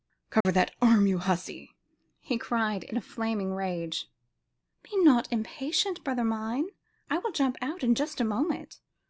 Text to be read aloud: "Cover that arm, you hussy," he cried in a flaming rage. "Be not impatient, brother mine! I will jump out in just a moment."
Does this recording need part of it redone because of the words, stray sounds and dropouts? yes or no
yes